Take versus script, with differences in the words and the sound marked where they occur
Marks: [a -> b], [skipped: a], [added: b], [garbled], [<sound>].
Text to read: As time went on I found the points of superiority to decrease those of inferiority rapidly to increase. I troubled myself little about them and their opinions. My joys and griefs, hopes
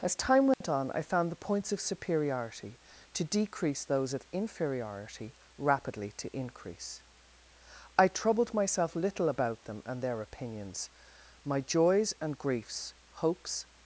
As time went [dropout] on I found the points of superiority to decrease those of inferiority rapidly to increase. I troubled myself little about them and their opinions. My joys and griefs, hopes